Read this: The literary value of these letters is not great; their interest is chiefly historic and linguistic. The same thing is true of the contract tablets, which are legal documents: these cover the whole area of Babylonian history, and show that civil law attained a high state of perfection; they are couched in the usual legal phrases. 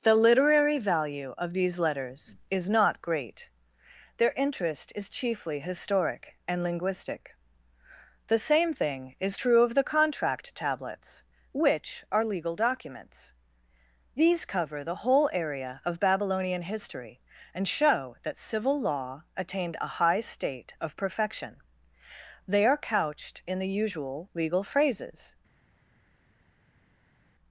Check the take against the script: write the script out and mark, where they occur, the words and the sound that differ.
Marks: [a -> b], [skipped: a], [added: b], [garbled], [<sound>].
The literary value of these letters is not great; their interest is chiefly historic and linguistic. The same thing is true of the contract tablets, which are legal documents: these cover the whole area of Babylonian history, and show that civil law attained a high state of perfection; they are couched in the usual legal phrases.